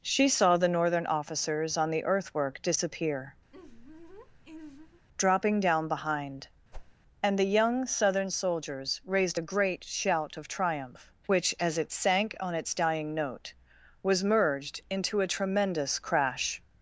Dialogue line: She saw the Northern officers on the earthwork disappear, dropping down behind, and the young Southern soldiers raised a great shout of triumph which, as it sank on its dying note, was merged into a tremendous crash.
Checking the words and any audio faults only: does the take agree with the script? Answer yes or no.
no